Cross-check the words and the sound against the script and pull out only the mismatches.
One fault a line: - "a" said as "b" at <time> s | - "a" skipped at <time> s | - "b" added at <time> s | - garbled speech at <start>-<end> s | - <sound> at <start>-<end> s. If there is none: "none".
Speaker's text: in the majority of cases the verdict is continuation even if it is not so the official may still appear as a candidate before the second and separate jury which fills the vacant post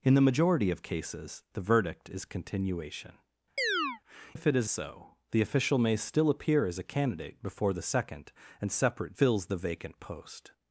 - "even" skipped at 3.2 s
- chirp at 3.6-4.0 s
- "not" skipped at 4.7 s
- "jury which" skipped at 9.1 s